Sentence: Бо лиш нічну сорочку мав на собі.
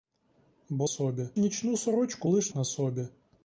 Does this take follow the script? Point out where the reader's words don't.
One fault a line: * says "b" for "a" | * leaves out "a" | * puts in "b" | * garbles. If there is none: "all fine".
* says "собі" for "лиш"
* says "лиш" for "мав"